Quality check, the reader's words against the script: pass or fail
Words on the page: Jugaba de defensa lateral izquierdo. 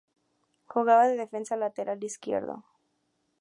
pass